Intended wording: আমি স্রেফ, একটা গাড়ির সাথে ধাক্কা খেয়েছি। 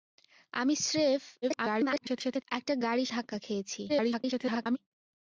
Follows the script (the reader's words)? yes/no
no